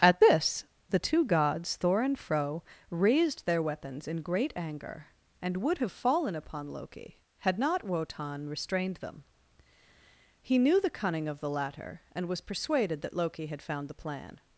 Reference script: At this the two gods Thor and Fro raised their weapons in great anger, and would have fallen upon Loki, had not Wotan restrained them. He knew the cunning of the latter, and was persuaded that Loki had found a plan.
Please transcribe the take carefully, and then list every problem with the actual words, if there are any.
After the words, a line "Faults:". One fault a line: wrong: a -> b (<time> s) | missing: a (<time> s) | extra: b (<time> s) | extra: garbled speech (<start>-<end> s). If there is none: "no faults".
At this the two gods Thor and Fro raised their weapons in great anger, and would have fallen upon Loki, had not Wotan restrained them. He knew the cunning of the latter, and was persuaded that Loki had found the plan.
Faults:
wrong: a -> the (13.9 s)